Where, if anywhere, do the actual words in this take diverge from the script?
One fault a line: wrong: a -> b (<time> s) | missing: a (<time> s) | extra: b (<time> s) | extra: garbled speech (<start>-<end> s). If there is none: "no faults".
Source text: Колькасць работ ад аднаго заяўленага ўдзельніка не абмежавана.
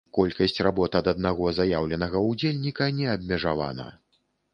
no faults